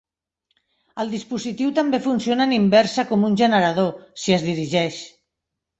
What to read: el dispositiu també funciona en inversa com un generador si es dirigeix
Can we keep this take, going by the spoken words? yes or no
yes